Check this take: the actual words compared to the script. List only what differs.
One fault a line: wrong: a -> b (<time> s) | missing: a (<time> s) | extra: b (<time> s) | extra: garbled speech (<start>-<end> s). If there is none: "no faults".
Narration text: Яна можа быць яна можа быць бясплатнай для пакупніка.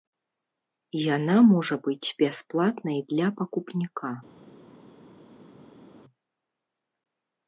missing: яна можа быць (2.1 s)